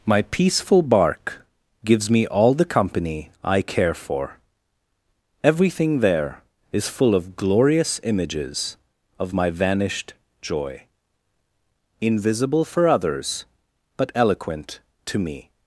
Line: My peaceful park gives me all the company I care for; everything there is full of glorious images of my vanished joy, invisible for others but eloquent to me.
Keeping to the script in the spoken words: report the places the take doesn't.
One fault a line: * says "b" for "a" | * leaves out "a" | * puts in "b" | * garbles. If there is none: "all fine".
* says "bark" for "park"